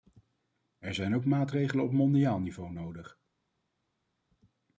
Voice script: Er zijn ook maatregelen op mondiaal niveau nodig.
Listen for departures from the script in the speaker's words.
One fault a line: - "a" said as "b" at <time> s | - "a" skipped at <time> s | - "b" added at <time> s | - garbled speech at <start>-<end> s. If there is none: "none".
none